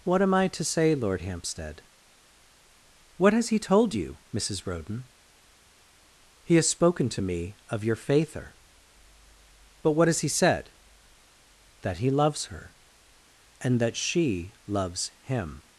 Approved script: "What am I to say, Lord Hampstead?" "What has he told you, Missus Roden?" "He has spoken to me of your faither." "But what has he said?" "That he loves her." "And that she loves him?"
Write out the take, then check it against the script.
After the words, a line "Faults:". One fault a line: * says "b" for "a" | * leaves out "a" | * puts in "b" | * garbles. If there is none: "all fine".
"What am I to say, Lord Hampstead?" "What has he told you, Missus Roden?" "He has spoken to me of your faither." "But what has he said?" "That he loves her." "And that she loves him?"
Faults:
all fine